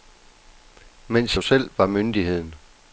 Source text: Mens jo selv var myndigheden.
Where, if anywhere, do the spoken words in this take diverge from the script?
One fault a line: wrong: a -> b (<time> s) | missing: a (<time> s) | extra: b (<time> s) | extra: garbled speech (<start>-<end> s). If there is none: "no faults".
no faults